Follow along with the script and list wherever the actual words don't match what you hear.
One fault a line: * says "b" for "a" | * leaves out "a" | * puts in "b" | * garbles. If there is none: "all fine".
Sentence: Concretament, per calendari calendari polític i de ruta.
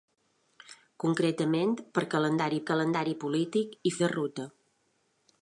all fine